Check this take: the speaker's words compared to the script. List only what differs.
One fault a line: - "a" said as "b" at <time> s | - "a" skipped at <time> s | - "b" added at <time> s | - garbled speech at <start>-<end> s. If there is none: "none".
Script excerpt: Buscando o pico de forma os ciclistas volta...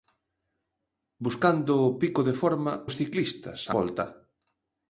none